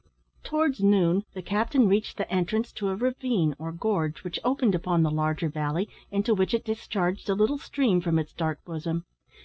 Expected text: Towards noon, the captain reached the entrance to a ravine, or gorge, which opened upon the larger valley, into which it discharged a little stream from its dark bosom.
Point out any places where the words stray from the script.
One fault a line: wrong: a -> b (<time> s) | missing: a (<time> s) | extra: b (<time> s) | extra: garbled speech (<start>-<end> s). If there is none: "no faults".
no faults